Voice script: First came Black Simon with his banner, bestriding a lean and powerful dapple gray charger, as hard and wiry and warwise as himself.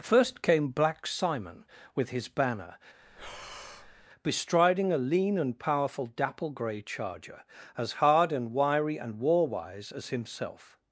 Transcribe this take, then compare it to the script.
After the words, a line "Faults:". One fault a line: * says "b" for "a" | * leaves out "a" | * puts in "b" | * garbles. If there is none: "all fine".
First came Black Simon with his banner, bestriding a lean and powerful dapple gray charger, as hard and wiry and warwise as himself.
Faults:
all fine